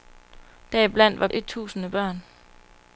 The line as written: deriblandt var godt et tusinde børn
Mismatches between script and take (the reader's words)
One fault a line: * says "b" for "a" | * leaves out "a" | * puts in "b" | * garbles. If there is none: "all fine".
* leaves out "godt"